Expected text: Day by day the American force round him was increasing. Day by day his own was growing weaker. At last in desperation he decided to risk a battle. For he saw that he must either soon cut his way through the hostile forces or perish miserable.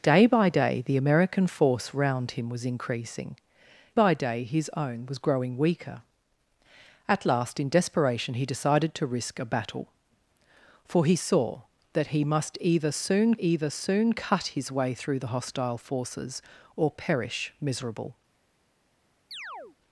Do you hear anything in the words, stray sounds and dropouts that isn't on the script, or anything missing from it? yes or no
yes